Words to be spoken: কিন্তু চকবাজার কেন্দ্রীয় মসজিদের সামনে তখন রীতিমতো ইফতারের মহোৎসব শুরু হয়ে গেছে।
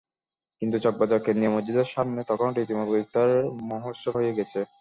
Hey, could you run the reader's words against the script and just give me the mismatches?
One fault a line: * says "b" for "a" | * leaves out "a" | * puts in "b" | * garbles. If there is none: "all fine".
* leaves out "শুরু"